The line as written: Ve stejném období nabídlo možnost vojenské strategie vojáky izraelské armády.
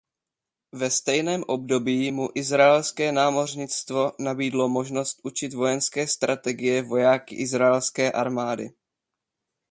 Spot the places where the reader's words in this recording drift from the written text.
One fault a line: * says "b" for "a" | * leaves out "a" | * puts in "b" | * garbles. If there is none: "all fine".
* puts in "mu izraelské námořnictvo"
* puts in "učit"